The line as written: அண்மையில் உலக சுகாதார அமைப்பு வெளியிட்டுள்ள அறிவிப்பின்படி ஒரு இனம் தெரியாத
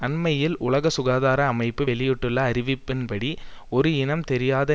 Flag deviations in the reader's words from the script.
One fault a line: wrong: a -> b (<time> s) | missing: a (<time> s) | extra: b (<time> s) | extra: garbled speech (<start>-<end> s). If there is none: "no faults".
no faults